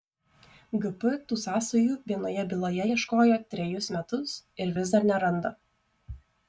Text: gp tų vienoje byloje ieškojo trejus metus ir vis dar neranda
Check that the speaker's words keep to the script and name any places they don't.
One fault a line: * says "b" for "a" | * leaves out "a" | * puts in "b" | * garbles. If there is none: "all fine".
* puts in "sąsajų"